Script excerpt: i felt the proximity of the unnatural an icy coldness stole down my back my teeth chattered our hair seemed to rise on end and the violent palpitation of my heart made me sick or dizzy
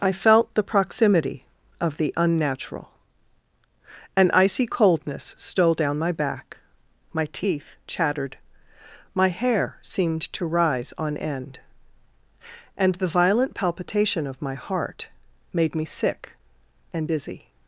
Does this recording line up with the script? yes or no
no